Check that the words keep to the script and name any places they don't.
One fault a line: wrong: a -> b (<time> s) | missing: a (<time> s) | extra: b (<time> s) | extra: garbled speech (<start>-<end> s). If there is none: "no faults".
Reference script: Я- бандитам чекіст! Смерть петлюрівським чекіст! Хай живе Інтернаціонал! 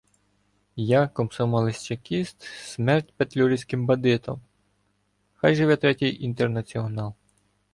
wrong: бандитам -> комсомолець (1.1 s)
wrong: чекіст -> бандитам (3.9 s)
extra: Третій (5.8 s)